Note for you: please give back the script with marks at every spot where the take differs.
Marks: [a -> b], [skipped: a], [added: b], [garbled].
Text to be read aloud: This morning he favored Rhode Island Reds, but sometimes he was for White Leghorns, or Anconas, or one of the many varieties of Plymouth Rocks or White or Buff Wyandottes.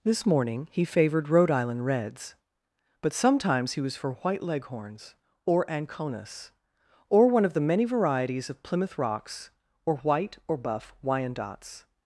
This morning he favored Rhode Island Reds, but sometimes he was for White Leghorns, or Anconas, or one of the many varieties of Plymouth Rocks or White or Buff Wyandottes.